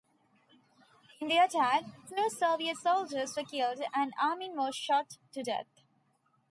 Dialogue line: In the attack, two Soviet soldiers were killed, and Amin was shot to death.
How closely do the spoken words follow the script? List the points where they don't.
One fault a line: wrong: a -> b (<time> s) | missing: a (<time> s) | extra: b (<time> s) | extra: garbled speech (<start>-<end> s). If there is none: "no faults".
no faults